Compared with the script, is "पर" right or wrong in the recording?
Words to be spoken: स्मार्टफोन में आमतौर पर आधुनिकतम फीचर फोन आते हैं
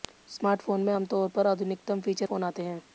right